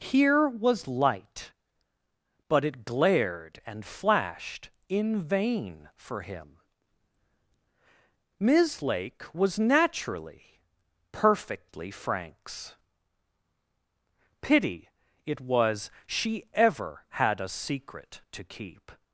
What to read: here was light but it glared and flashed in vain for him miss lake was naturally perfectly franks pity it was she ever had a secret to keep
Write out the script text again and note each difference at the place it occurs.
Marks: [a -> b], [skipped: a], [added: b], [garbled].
here was light but it glared and flashed in vain for him miss lake was naturally perfectly franks pity it was she ever had a secret to keep